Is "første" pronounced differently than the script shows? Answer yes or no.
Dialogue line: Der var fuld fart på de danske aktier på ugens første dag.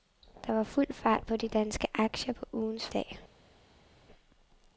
yes